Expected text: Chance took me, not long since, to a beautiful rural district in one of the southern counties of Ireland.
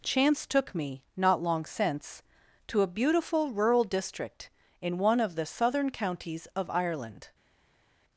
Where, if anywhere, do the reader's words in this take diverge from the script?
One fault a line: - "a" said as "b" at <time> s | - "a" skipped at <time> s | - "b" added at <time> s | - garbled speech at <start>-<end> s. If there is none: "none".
none